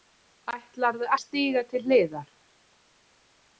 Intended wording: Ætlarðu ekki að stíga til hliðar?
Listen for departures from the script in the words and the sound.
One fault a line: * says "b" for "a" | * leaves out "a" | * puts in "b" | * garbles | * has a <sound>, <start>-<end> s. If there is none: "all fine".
* leaves out "ekki"